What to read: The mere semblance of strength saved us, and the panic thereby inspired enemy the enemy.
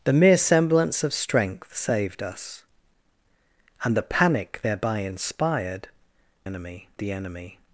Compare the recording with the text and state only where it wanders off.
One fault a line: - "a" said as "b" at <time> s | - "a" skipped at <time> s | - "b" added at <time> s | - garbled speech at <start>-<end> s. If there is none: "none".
none